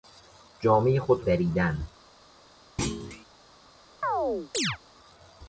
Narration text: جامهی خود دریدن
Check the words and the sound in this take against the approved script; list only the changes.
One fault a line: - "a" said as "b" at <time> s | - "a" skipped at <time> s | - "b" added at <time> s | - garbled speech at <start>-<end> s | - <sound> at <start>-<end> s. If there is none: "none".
- thud at 2.8-3.3 s
- chirp at 4.0-4.8 s